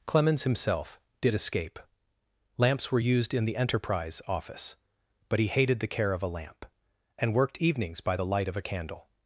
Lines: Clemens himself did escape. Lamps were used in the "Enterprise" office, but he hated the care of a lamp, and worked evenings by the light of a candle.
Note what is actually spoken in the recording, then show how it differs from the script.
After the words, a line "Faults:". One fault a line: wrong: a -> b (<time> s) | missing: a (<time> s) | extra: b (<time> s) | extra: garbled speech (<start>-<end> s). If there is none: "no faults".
Clemens himself did escape. Lamps were used in the "Enterprise" office, but he hated the care of a lamp, and worked evenings by the light of a candle.
Faults:
no faults